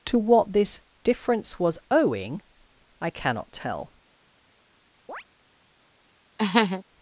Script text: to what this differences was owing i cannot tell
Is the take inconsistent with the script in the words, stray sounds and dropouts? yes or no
yes